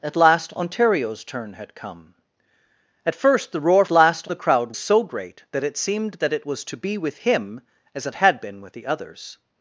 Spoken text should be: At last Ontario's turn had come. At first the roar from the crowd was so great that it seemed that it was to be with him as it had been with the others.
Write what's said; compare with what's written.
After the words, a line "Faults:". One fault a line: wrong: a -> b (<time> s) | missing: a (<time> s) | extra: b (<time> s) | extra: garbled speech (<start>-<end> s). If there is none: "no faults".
At last Ontario's turn had come. At first the roar last the crowd so great that it seemed that it was to be with him as it had been with the others.
Faults:
wrong: from -> last (3.9 s)
missing: was (4.7 s)